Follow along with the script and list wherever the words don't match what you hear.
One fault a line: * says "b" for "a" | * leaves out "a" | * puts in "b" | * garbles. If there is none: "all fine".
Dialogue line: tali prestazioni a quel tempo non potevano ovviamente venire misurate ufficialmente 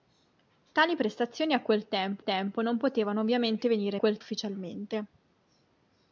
* puts in "tempo"
* says "quel" for "misurate"